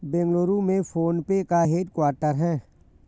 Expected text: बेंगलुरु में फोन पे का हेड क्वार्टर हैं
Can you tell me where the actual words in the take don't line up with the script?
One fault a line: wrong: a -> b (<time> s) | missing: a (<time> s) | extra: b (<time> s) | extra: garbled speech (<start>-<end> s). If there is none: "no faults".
no faults